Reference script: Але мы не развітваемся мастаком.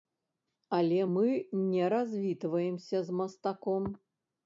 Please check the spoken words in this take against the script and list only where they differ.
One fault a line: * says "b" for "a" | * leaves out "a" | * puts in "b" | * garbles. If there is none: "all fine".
* puts in "з"